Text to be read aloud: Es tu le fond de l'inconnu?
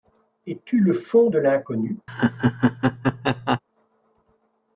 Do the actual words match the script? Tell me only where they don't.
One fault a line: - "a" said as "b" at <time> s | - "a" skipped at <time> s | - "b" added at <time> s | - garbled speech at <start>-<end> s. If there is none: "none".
none